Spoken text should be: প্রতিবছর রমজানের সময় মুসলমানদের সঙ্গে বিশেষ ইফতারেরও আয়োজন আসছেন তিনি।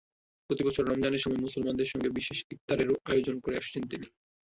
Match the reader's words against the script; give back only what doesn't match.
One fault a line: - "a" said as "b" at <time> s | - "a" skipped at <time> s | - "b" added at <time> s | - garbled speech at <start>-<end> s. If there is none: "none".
- "করে" added at 3.4 s